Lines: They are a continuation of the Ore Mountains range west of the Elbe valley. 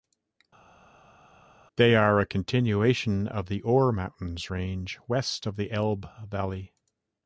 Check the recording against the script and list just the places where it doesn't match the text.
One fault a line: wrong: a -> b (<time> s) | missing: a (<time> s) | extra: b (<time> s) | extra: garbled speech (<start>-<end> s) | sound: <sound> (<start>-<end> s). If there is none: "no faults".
no faults